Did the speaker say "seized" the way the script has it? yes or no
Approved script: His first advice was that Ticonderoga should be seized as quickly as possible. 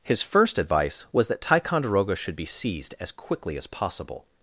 yes